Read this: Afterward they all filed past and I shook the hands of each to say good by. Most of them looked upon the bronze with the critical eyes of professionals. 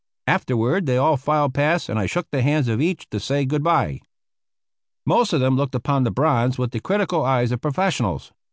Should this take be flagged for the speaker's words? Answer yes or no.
no